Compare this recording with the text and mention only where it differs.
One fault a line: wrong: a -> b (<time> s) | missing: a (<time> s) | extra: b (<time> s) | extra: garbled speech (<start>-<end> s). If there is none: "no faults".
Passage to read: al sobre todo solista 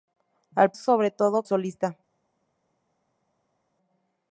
no faults